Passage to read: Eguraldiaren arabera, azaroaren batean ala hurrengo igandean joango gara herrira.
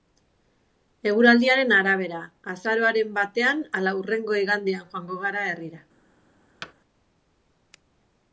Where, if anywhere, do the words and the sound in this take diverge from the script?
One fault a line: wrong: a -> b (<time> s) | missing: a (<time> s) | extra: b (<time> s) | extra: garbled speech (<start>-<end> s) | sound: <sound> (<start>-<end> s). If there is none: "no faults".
sound: thud (6.6-6.7 s)